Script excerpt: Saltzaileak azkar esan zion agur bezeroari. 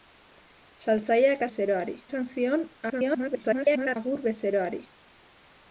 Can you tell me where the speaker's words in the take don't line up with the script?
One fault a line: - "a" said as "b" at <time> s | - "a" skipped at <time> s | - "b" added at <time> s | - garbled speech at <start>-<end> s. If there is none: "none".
- "azkar" said as "bezeroari" at 1.5 s
- garbled speech at 2.9-4.0 s